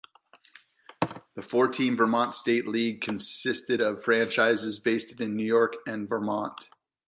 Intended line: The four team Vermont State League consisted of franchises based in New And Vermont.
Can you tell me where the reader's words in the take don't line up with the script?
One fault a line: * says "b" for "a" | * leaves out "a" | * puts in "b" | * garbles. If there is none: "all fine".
* puts in "York"